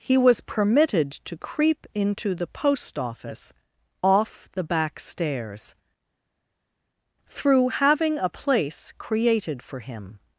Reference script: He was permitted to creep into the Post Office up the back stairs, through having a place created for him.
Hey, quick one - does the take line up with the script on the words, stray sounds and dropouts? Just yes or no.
no